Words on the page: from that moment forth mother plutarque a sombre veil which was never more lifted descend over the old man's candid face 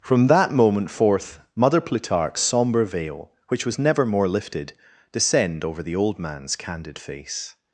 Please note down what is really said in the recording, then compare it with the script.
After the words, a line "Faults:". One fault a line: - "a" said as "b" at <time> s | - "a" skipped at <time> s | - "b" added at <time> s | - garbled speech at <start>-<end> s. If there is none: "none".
from that moment forth mother plutarque a sombre veil which was never more lifted descend over the old man's candid face
Faults:
none